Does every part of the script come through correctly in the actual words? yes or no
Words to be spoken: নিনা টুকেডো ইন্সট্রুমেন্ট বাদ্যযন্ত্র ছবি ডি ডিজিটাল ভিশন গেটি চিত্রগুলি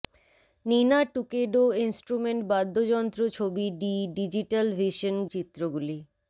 no